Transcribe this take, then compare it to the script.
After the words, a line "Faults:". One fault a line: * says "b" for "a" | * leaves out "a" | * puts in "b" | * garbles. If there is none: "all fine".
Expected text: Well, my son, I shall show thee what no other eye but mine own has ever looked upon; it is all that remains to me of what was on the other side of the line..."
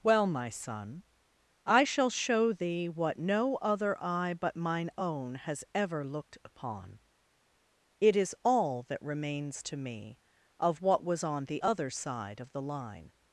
Well, my son, I shall show thee what no other eye but mine own has ever looked upon; it is all that remains to me of what was on the other side of the line..."
Faults:
all fine